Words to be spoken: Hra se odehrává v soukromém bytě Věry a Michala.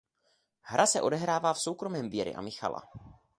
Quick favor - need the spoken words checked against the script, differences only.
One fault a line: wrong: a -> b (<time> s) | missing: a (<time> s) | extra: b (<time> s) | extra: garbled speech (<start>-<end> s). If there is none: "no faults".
missing: bytě (2.1 s)